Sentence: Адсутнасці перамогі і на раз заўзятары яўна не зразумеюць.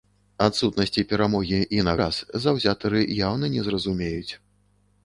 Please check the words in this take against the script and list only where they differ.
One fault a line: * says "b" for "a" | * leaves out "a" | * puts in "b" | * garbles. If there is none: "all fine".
all fine